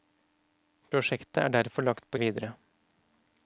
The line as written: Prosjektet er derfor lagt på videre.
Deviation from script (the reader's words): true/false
false